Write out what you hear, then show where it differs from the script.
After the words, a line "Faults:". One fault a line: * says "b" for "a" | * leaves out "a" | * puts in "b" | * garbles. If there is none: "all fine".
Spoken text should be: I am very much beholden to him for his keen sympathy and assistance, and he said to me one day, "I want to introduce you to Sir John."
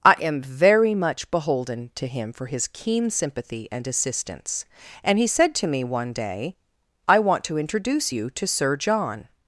I am very much beholden to him for his keen sympathy and assistance, and he said to me one day, "I want to introduce you to Sir John."
Faults:
all fine